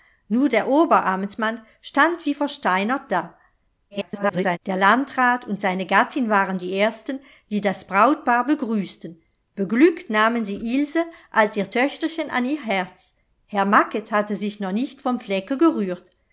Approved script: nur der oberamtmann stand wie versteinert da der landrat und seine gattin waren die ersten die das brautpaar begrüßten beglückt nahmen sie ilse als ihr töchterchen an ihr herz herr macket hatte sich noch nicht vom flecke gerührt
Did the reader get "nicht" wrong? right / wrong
right